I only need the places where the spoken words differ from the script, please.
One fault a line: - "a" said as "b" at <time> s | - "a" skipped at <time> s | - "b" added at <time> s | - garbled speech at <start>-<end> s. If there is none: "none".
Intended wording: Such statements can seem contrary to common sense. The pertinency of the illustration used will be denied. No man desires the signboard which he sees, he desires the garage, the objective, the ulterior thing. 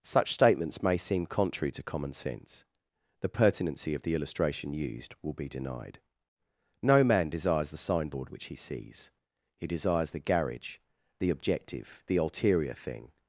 - "can" said as "may" at 0.8 s